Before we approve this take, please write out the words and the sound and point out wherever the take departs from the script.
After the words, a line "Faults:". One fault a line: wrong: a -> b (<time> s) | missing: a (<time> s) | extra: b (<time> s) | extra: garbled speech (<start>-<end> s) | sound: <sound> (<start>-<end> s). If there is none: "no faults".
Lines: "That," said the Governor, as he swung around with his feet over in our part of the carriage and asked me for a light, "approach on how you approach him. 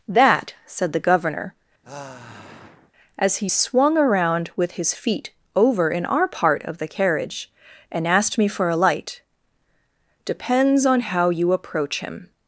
"That," said the Governor, as he swung around with his feet over in our part of the carriage and asked me for a light, "depends on how you approach him.
Faults:
sound: sigh (1.8-2.9 s)
wrong: approach -> depends (10.3 s)